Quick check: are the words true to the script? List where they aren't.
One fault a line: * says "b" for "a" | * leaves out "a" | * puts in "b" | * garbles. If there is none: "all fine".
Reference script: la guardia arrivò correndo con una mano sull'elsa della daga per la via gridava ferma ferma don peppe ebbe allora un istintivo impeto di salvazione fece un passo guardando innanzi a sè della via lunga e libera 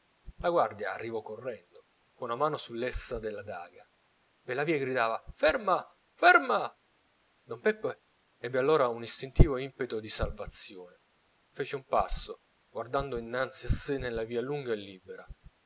* says "nella" for "della"